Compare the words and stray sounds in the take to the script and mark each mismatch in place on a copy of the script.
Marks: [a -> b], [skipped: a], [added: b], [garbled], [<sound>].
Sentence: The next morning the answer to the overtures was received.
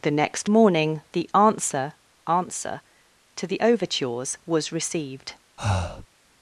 The next morning the answer [added: answer] to the overtures was received. [breath]